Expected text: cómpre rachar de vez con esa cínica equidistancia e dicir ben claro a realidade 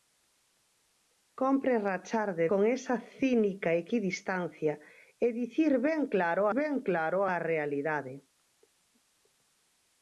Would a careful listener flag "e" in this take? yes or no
no